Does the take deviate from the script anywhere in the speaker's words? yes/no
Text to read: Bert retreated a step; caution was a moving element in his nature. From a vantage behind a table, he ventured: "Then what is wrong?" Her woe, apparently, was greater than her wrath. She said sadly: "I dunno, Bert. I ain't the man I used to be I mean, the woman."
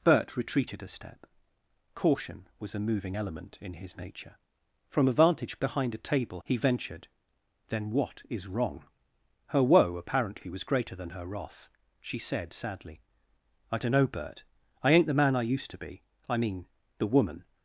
no